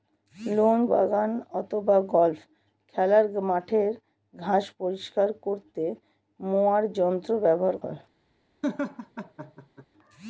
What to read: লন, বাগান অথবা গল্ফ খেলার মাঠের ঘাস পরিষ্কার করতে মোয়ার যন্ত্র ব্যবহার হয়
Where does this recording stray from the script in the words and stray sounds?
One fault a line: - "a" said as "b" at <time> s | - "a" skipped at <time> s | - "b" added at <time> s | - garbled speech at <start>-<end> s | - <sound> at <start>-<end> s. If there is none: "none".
- laugh at 8.6-9.9 s